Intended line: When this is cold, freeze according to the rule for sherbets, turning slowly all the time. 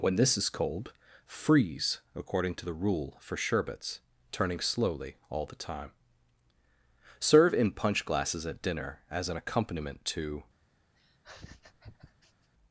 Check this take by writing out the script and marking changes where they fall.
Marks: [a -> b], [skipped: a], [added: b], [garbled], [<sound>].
When this is cold, freeze according to the rule for sherbets, turning slowly all the time. [added: Serve in punch glasses at dinner as an accompaniment to] [laugh]